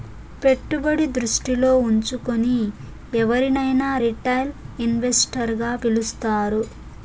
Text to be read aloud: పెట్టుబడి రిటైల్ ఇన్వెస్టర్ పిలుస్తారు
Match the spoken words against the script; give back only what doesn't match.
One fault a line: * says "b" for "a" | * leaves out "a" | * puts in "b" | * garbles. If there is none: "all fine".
* puts in "దృష్టిలో ఉంచుకుని ఎవరినైనా"
* puts in "గా"